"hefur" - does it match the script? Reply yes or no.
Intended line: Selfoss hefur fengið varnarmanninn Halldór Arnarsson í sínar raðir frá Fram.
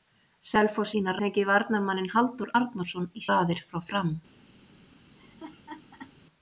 no